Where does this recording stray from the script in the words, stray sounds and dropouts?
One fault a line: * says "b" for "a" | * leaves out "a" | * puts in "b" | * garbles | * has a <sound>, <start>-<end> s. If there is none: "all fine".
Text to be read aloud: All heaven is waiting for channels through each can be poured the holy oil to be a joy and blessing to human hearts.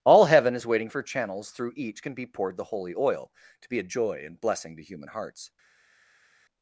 all fine